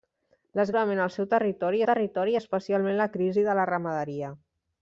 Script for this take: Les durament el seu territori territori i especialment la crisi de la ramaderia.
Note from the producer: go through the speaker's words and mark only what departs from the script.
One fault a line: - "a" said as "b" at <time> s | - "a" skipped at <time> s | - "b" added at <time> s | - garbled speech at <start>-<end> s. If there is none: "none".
none